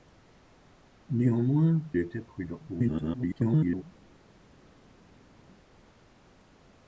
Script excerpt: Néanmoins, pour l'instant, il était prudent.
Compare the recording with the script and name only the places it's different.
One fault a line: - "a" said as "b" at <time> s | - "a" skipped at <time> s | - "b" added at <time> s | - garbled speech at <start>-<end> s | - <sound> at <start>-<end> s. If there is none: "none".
- "pour l'instant il" skipped at 1.8 s
- garbled speech at 2.7-3.8 s